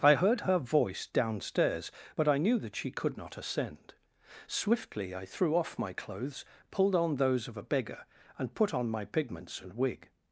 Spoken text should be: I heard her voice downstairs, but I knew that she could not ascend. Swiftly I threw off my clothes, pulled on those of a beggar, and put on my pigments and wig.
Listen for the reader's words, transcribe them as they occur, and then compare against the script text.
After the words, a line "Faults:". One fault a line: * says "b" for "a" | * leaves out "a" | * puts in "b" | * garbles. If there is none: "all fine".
I heard her voice downstairs, but I knew that she could not ascend. Swiftly I threw off my clothes, pulled on those of a beggar, and put on my pigments and wig.
Faults:
all fine